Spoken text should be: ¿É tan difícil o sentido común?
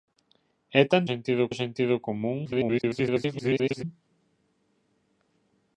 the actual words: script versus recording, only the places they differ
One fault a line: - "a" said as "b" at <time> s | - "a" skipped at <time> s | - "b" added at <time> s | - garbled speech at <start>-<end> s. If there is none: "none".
- "difícil" said as "sentido" at 1.1 s
- garbled speech at 2.4-3.8 s